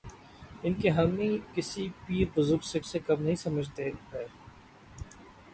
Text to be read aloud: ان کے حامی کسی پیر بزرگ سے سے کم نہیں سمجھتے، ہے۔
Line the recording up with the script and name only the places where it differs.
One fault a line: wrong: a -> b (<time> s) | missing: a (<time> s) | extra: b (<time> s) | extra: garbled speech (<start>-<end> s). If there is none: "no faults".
no faults